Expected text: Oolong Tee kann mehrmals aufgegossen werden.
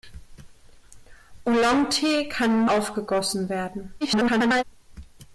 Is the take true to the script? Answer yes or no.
no